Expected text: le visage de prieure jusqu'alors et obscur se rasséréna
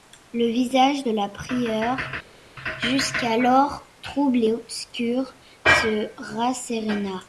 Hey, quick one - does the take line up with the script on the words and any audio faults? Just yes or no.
no